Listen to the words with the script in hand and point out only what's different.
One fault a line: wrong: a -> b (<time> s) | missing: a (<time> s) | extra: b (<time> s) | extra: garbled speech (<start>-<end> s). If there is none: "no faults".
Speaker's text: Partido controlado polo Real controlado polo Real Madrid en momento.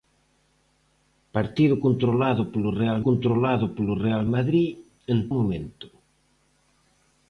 no faults